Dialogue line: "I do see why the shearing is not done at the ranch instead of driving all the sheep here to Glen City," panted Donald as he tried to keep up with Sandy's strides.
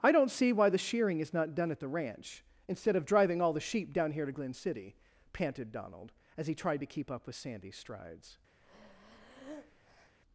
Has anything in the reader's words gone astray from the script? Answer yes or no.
yes